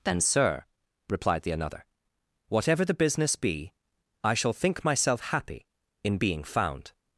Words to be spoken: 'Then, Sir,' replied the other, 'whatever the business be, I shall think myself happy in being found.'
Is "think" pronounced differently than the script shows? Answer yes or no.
no